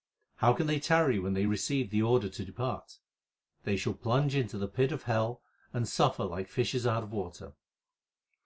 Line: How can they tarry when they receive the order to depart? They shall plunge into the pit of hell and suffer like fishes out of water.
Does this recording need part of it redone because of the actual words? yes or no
no